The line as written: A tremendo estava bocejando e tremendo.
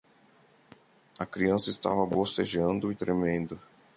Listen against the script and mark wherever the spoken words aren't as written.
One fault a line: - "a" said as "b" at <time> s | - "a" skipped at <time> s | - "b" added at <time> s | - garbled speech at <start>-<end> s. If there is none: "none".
- "tremendo" said as "criança" at 1.3 s